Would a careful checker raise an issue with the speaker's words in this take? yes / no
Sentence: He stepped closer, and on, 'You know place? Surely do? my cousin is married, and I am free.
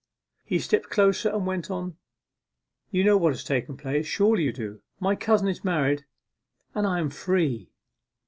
yes